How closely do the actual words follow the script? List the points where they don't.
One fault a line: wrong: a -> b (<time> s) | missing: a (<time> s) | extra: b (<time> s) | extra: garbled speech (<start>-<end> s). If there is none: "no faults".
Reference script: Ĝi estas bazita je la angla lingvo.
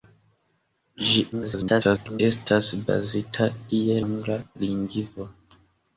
extra: garbled speech (1.3-2.2 s)
missing: la (4.0 s)